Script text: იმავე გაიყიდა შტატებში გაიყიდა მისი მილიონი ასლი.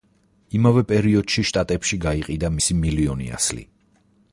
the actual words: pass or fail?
fail